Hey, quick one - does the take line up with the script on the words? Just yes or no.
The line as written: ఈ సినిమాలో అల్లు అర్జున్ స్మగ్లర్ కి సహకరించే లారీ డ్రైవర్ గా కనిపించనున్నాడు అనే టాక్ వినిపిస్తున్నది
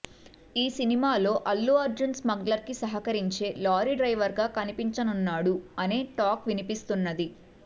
yes